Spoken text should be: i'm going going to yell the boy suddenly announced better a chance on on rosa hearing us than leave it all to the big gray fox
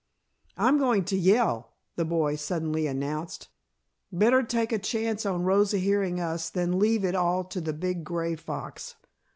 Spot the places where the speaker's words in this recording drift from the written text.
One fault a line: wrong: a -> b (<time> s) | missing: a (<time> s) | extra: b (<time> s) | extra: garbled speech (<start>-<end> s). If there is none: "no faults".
missing: going (1.1 s)
extra: take (4.4 s)
missing: on (5.4 s)